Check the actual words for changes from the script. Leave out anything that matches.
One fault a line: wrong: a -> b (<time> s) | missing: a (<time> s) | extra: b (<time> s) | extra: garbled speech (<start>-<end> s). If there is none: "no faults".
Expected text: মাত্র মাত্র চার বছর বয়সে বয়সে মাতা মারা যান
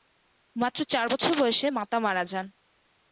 missing: মাত্র (0.8 s)
missing: বয়সে (1.7 s)